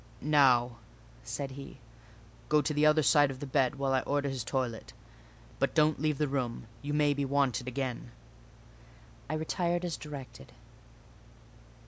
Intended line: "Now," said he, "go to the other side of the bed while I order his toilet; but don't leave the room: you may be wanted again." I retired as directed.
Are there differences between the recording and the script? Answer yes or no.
no